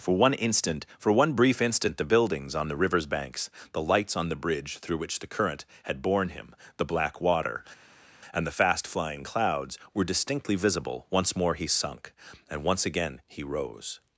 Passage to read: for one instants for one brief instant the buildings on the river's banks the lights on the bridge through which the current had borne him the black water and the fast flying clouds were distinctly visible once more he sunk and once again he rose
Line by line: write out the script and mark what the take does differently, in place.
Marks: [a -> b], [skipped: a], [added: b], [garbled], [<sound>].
for one [instants -> instant] for one brief instant the buildings on the river's banks the lights on the bridge through which the current had borne him the black water and the fast flying clouds were distinctly visible once more he sunk and once again he rose